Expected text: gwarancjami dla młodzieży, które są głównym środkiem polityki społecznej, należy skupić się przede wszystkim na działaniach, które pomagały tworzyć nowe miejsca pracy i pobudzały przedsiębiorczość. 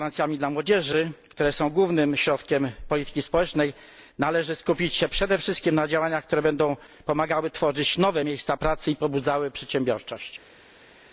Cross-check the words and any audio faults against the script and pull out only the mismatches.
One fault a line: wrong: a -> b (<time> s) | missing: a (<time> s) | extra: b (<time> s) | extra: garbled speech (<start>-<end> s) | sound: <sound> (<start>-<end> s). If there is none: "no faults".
extra: będą (6.4 s)